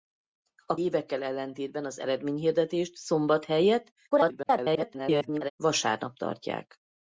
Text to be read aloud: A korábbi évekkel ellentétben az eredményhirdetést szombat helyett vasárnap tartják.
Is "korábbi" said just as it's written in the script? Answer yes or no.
no